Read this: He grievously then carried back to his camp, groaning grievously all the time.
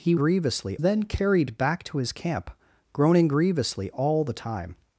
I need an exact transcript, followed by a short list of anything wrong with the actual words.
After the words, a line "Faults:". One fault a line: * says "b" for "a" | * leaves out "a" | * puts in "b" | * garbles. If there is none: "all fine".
He grievously then carried back to his camp, groaning grievously all the time.
Faults:
all fine